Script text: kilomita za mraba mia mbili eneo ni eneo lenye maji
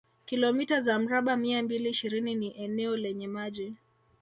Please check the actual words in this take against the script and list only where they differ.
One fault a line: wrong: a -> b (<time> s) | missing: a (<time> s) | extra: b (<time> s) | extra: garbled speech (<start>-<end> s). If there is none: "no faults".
wrong: eneo -> ishirini (1.9 s)